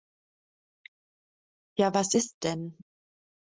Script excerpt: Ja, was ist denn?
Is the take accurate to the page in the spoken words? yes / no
yes